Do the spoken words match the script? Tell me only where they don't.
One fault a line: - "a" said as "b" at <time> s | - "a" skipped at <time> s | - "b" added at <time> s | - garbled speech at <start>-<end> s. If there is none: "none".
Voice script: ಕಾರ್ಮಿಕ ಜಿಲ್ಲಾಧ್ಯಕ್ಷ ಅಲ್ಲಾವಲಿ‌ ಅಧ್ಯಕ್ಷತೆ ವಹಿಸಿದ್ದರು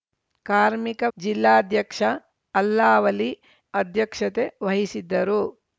none